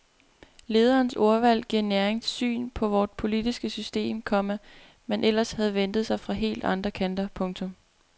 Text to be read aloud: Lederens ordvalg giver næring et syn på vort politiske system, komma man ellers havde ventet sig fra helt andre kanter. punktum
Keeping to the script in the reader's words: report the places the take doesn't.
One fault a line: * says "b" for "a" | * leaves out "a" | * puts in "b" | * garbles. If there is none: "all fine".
all fine